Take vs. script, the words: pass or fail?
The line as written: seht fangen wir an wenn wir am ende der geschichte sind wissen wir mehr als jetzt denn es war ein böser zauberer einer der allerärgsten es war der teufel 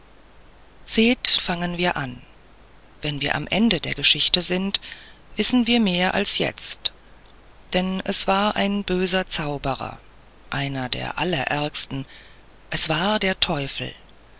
pass